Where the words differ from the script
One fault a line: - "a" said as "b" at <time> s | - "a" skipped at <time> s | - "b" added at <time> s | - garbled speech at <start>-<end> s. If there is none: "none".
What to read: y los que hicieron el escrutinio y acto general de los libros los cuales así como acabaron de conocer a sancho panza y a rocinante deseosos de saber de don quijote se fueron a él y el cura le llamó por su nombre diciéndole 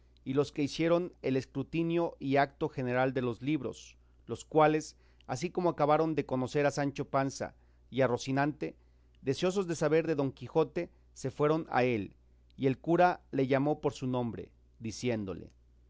none